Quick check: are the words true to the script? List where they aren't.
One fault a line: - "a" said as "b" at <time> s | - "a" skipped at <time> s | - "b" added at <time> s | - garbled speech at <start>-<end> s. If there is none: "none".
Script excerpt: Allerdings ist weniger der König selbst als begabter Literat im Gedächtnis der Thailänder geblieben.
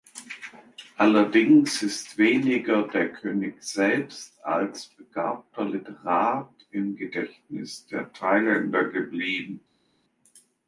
none